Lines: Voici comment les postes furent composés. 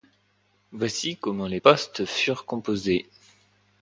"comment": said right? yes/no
yes